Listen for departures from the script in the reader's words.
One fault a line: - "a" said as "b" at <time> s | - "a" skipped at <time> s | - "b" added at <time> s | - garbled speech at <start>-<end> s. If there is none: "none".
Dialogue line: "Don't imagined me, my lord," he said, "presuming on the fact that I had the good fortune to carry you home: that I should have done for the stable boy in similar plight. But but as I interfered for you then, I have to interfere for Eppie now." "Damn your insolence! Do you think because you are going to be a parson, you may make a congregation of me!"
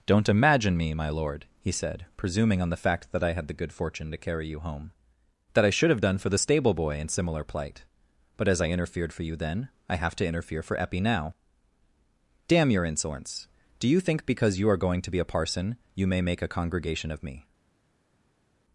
- "imagined" said as "imagine" at 0.3 s
- "but" skipped at 8.5 s